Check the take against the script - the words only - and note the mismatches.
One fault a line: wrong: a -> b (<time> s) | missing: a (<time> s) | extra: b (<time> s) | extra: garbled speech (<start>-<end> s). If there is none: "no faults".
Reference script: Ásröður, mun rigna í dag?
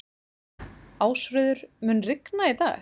no faults